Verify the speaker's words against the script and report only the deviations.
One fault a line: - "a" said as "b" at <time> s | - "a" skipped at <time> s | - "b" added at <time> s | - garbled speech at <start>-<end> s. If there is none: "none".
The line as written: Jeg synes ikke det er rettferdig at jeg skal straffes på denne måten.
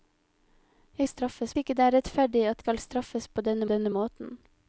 - "synes" said as "straffes" at 1.0 s
- "jeg" skipped at 2.6 s
- "denne" added at 3.6 s